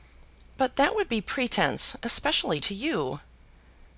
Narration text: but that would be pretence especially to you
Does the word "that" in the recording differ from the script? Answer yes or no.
no